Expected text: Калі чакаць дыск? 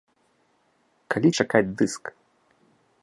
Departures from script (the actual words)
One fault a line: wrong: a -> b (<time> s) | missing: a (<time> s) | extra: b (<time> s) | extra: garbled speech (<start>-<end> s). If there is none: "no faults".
no faults